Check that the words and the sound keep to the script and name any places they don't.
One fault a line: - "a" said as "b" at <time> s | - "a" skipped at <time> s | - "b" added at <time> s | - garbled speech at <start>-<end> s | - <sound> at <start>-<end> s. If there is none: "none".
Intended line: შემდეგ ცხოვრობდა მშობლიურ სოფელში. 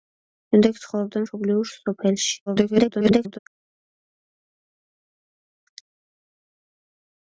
- garbled speech at 2.5-3.4 s